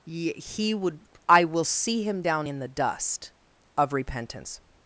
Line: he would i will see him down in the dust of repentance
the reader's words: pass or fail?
pass